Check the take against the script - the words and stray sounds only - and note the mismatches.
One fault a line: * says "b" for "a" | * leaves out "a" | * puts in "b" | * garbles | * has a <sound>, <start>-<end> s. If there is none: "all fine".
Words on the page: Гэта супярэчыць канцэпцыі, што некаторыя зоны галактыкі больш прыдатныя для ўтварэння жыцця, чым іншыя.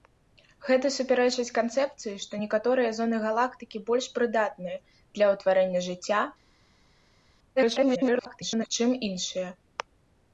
* garbles